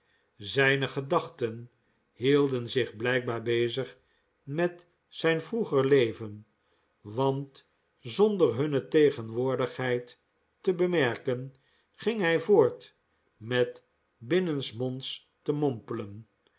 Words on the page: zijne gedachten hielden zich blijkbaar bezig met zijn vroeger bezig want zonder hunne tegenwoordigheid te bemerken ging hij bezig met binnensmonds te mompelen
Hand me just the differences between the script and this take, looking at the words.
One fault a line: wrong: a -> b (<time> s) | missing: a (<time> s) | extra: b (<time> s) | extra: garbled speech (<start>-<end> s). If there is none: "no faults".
wrong: bezig -> leven (5.9 s)
wrong: bezig -> voort (12.4 s)